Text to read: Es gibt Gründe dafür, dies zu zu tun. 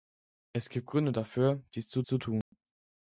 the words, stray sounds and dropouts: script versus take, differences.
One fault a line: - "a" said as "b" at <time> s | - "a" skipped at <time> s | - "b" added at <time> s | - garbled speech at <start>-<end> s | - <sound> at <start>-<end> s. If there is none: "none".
- dropout at 2.4-2.5 s